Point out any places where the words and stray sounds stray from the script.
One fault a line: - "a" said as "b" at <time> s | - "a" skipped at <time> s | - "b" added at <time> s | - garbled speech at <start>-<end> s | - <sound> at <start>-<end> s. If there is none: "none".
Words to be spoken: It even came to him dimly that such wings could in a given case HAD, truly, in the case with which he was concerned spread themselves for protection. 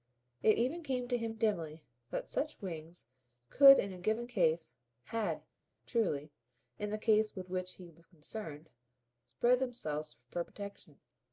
none